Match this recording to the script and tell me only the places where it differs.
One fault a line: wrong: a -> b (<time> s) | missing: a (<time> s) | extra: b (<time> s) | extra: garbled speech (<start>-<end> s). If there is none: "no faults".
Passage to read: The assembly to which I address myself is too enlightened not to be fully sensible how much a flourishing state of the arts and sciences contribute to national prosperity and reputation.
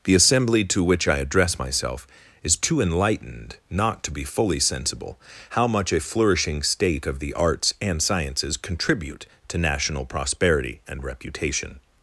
no faults